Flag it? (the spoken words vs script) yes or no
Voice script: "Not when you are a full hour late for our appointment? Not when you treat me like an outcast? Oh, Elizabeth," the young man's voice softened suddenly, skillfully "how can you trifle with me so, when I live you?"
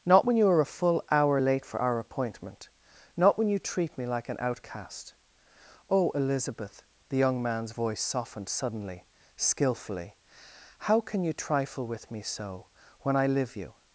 no